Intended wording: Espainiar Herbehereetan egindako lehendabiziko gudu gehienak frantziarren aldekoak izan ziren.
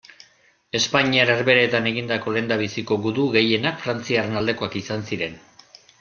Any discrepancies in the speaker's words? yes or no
no